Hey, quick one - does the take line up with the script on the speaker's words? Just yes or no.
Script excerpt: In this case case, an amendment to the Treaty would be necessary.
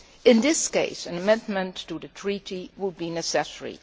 no